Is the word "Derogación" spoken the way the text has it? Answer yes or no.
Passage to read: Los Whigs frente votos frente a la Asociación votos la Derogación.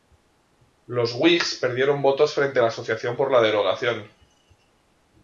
yes